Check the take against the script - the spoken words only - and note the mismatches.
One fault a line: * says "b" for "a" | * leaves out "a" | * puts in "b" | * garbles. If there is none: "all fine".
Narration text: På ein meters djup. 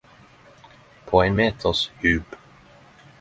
all fine